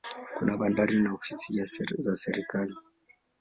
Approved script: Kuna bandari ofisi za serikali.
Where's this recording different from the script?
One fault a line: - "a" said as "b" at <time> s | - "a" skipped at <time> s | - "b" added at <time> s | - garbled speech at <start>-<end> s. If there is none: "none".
- "na" added at 1.0 s